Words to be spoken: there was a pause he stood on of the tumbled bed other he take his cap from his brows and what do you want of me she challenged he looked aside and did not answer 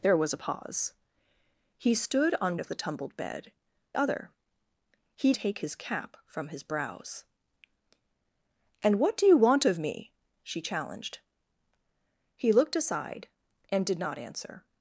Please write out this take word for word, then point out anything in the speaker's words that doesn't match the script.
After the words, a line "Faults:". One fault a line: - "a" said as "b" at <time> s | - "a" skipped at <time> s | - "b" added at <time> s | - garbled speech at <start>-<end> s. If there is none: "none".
there was a pause he stood on of the tumbled bed other he take his cap from his brows and what do you want of me she challenged he looked aside and did not answer
Faults:
none